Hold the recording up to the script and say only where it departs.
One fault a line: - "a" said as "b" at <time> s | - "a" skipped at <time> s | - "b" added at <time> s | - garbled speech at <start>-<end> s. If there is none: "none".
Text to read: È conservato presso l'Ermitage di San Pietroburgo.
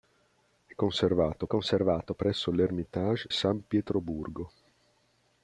- "conservato" added at 1.4 s
- "di" skipped at 3.3 s